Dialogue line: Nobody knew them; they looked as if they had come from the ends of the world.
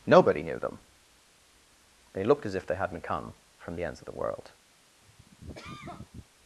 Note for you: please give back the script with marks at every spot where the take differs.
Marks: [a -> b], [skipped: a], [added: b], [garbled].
Nobody knew them; they looked as if they [had -> hadn't] come from the ends of the world.